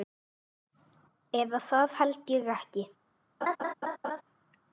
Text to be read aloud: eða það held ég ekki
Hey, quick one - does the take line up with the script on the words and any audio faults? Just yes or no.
no